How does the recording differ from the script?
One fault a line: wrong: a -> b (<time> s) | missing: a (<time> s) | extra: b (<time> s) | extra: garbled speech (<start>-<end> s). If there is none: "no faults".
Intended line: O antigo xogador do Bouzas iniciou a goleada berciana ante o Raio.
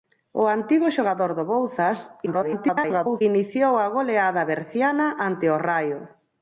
extra: garbled speech (2.3-3.2 s)